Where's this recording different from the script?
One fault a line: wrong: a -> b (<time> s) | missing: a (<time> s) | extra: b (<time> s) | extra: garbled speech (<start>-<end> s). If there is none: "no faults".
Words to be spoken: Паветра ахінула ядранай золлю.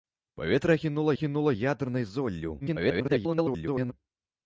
extra: ахінула (1.1 s)
extra: garbled speech (2.6-3.9 s)